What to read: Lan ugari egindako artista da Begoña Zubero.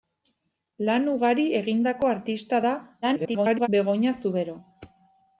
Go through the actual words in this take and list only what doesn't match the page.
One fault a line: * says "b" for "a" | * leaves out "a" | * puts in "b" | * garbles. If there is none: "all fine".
* garbles